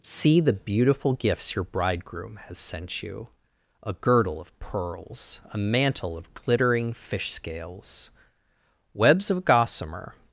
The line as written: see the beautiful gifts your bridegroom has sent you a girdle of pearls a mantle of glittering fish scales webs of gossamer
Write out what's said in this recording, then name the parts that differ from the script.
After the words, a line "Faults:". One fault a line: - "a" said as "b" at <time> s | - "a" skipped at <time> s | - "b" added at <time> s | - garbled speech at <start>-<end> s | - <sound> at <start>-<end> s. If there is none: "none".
see the beautiful gifts your bridegroom has sent you a girdle of pearls a mantle of glittering fish scales webs of gossamer
Faults:
none